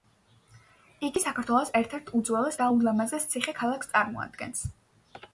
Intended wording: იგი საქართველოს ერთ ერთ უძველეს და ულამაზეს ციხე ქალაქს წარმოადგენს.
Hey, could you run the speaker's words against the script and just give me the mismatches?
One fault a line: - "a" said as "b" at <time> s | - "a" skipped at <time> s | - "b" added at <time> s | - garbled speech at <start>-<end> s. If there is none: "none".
none